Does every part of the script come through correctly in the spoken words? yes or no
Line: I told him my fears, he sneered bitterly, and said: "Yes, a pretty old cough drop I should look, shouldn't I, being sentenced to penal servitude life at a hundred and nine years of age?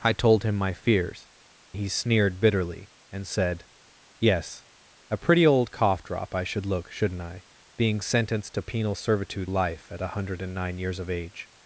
yes